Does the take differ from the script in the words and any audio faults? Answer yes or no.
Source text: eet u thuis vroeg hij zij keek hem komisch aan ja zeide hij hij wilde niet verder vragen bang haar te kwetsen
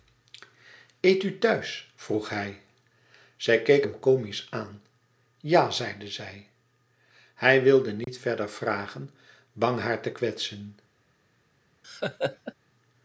yes